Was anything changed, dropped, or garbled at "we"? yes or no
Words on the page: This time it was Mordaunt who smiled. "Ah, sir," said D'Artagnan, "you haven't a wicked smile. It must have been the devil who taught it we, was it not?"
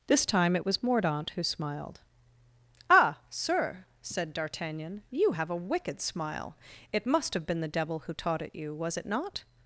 yes